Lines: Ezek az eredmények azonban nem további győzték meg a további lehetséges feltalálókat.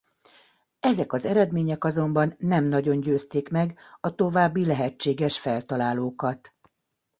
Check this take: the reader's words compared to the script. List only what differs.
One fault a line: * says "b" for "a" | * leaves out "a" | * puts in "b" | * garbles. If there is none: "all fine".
* says "nagyon" for "további"